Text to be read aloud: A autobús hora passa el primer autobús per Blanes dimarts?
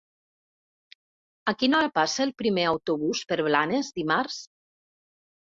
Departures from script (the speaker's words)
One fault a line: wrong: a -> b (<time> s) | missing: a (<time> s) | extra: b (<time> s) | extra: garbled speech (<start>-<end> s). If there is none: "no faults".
wrong: autobús -> quina (1.6 s)